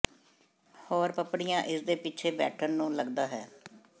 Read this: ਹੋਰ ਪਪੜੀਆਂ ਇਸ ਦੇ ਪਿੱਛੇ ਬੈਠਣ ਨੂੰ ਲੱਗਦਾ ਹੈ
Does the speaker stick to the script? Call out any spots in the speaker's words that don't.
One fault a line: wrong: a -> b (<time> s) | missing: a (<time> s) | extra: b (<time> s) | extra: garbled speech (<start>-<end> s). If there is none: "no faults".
no faults